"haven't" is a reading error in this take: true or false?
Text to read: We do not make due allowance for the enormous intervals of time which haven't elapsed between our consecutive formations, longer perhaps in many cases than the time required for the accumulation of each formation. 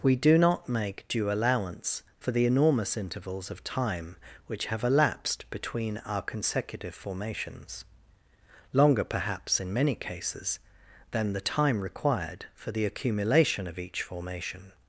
true